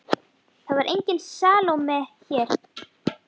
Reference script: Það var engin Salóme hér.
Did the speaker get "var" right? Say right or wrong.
right